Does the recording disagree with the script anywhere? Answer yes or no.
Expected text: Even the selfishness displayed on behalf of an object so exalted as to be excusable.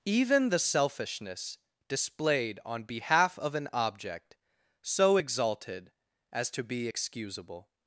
no